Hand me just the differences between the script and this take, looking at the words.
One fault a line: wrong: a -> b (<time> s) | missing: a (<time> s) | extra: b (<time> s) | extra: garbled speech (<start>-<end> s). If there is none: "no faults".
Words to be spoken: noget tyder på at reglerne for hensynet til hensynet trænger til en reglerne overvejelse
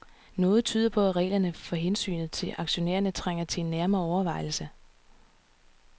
wrong: hensynet -> aktionærerne (2.6 s)
wrong: reglerne -> nærmere (3.7 s)